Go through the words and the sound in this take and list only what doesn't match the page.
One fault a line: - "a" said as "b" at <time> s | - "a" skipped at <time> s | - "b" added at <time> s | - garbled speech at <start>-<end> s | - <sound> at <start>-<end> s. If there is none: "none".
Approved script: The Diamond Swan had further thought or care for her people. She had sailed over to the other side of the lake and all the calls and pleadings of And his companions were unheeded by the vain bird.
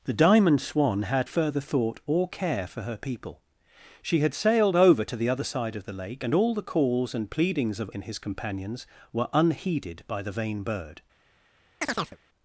- chirp at 11.8-12.2 s